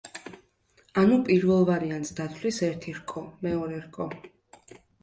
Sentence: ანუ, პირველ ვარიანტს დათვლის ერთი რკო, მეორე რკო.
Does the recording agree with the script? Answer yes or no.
yes